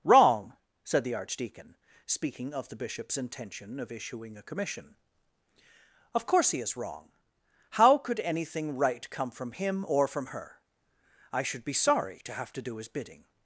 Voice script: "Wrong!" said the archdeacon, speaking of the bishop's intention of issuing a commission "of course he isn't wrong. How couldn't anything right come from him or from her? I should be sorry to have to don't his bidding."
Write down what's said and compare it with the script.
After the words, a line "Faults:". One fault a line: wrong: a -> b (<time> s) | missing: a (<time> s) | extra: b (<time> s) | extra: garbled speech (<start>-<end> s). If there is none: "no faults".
"Wrong!" said the archdeacon, speaking of the bishop's intention of issuing a commission "of course he is wrong. How could anything right come from him or from her? I should be sorry to have to do his bidding."
Faults:
wrong: isn't -> is (6.6 s)
wrong: couldn't -> could (8.0 s)
wrong: don't -> do (12.6 s)